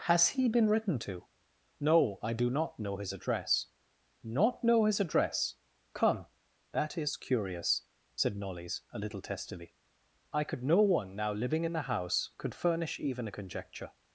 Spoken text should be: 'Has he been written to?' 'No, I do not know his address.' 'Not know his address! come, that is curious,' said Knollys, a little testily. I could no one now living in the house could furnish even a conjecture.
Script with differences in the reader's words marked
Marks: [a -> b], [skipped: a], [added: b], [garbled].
'Has he been written to?' 'No, I do not know his address.' 'Not know his address! come, that is curious,' said Knollys, a little testily. I could no one now living in the house could furnish even a conjecture.